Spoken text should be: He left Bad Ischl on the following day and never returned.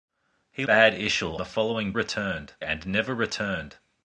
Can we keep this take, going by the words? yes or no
no